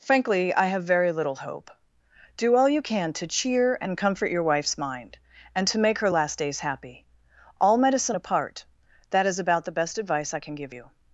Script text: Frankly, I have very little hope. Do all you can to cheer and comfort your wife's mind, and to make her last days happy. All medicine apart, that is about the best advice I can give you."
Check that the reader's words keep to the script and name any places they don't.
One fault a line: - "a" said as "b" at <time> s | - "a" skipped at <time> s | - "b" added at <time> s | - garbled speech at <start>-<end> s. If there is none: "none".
none